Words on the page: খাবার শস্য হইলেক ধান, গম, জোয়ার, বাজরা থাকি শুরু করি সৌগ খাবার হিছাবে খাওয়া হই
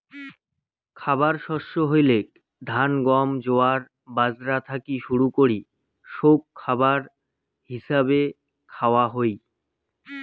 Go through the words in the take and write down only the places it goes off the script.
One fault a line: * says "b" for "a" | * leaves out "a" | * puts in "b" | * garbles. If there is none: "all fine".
all fine